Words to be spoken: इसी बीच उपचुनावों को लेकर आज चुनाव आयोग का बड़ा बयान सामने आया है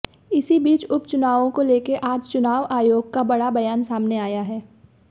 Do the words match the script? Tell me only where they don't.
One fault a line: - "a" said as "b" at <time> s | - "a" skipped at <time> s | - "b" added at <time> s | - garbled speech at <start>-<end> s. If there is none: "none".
none